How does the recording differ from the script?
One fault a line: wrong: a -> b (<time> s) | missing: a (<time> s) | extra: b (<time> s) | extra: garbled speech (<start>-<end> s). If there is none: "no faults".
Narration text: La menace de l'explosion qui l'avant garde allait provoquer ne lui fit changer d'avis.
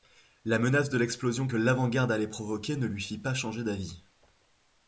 wrong: qui -> que (1.4 s)
extra: pas (3.2 s)